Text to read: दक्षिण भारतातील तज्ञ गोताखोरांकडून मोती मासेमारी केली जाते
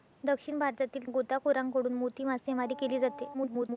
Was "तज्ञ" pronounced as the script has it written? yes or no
no